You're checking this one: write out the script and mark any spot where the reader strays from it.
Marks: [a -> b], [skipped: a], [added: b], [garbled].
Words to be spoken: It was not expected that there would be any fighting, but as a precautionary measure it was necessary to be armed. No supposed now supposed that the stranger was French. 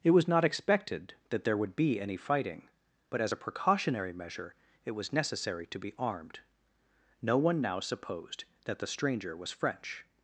It was not expected that there would be any fighting, but as a precautionary measure it was necessary to be armed. No [supposed -> one] now supposed that the stranger was French.